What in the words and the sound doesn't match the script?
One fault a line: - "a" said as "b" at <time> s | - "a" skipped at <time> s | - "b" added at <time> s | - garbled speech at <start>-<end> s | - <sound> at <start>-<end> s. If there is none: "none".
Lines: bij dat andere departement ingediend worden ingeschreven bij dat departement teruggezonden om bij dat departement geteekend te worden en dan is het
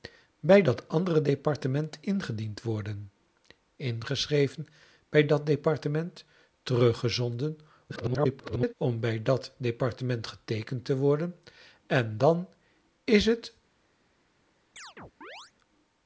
- garbled speech at 7.9-8.7 s
- chirp at 14.8-15.5 s